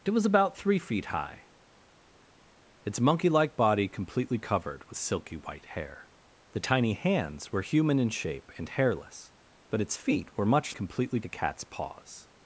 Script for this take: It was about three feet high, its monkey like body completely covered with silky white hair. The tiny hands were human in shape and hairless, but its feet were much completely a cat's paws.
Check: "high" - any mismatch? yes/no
no